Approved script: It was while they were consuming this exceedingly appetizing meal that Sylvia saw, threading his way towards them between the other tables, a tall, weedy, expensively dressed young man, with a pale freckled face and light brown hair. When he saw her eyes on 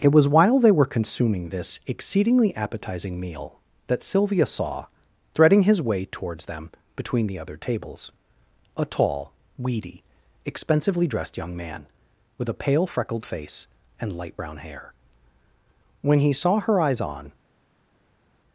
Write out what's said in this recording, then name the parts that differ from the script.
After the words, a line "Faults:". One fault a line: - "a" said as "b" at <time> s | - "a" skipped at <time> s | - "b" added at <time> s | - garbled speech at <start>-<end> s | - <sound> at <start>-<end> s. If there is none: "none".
It was while they were consuming this exceedingly appetizing meal that Sylvia saw, threading his way towards them between the other tables, a tall, weedy, expensively dressed young man, with a pale freckled face and light brown hair. When he saw her eyes on
Faults:
none